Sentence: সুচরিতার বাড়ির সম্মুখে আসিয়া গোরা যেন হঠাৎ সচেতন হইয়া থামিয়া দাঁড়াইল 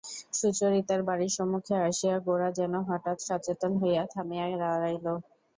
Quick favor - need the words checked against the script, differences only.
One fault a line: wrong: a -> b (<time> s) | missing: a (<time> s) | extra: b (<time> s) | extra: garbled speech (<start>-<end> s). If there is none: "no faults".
no faults